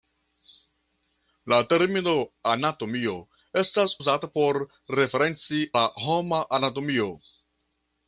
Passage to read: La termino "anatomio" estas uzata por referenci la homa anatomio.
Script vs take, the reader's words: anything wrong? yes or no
no